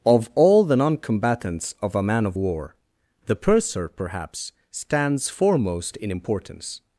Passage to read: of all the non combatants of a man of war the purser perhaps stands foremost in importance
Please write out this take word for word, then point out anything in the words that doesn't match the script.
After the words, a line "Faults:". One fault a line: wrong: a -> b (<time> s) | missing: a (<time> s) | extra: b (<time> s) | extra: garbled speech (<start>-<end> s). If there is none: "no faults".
of all the non combatants of a man of war the purser perhaps stands foremost in importance
Faults:
no faults